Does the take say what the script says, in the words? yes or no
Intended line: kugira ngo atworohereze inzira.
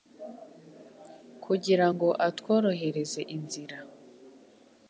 yes